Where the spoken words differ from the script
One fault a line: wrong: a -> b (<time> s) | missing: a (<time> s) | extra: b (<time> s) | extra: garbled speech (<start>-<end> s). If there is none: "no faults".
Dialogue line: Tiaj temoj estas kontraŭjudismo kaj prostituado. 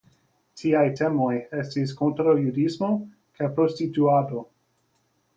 wrong: estas -> estis (1.6 s)